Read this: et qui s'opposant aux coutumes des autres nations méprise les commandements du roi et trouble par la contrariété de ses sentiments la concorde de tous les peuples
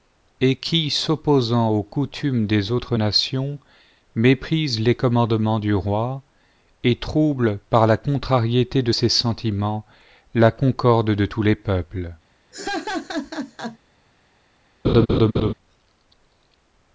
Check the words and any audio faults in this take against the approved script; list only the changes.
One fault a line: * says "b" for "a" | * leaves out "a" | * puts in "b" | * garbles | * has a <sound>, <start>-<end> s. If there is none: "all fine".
* has a laugh, 12.5-13.8 s
* has a laugh, 14.8-15.5 s